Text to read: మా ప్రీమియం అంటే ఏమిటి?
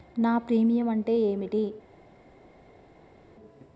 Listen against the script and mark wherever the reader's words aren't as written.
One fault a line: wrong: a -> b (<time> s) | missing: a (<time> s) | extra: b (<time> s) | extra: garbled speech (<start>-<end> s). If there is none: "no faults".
wrong: మా -> నా (0.2 s)